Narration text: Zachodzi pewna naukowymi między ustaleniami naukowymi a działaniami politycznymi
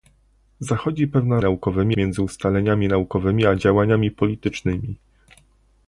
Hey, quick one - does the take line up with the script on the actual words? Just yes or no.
yes